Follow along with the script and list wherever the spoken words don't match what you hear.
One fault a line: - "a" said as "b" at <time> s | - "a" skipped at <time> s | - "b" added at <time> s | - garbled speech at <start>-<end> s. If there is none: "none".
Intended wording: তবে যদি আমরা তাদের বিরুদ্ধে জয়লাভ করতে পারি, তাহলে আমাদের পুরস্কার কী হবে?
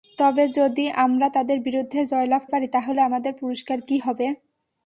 - "করতে" skipped at 2.4 s